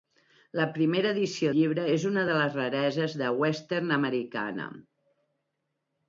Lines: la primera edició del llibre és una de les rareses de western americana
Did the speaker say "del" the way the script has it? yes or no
no